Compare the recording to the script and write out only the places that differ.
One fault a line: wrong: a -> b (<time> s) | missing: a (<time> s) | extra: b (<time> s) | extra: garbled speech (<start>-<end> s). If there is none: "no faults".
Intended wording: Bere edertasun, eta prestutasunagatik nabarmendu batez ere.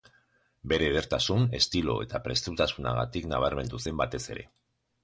extra: estilo (1.6 s)
extra: zen (3.9 s)